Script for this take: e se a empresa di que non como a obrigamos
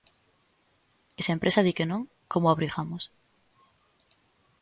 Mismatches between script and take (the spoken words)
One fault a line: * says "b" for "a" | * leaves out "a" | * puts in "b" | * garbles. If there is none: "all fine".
all fine